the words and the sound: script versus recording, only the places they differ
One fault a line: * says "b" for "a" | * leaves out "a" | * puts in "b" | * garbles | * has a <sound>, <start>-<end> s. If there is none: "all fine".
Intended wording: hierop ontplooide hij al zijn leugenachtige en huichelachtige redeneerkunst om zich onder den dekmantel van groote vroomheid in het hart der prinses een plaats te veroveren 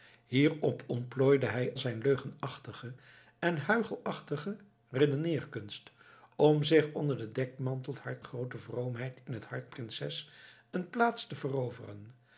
* leaves out "al"
* says "hart" for "van"
* leaves out "der"